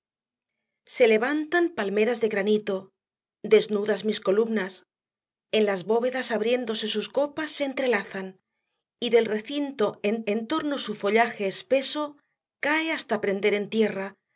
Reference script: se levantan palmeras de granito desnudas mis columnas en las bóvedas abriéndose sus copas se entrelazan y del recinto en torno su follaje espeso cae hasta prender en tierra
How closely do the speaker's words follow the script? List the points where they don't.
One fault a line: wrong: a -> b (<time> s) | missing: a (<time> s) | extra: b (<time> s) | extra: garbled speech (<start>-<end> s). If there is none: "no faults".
extra: en (10.3 s)